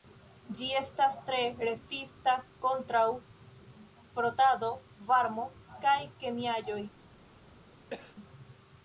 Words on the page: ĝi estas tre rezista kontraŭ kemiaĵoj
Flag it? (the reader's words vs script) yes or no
yes